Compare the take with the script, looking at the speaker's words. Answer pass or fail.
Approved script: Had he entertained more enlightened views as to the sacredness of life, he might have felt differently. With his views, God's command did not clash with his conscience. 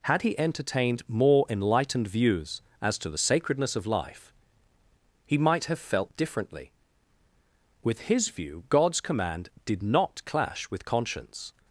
fail